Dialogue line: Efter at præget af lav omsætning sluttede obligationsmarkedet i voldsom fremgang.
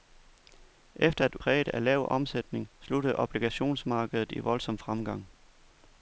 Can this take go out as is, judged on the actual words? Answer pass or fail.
pass